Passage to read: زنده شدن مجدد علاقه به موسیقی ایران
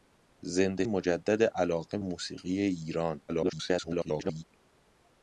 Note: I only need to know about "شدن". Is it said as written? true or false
false